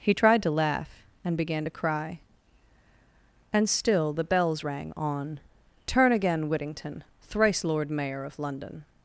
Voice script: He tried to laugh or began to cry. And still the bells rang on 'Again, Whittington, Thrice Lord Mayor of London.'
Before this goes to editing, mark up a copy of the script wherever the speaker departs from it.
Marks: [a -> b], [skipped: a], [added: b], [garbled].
He tried to laugh [or -> and] began to cry. And still the bells rang on [added: Turn] 'Again, Whittington, Thrice Lord Mayor of London.'